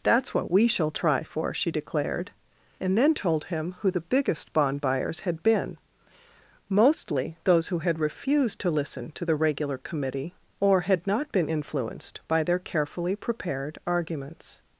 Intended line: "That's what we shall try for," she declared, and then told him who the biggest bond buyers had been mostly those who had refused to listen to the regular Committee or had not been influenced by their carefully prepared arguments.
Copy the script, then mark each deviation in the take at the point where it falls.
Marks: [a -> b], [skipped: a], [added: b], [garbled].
"That's what we shall try for," she declared, and then told him who the biggest bond buyers had been mostly those who had refused to listen to the regular Committee or had not been influenced by their carefully prepared arguments.